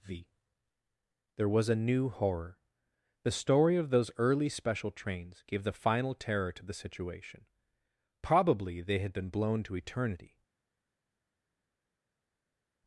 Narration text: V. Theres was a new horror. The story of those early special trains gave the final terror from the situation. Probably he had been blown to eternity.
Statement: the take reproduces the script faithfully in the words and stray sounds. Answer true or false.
false